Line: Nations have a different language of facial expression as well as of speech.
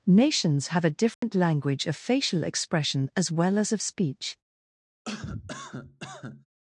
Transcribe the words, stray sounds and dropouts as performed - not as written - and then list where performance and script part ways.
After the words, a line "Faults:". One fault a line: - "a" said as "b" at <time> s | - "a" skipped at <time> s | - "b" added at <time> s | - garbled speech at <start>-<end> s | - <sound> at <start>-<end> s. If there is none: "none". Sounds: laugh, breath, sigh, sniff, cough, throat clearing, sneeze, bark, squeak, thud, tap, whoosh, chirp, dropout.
Nations have a different language of facial expression as well as of speech.
Faults:
- dropout at 1.1-1.2 s
- cough at 5.1-6.5 s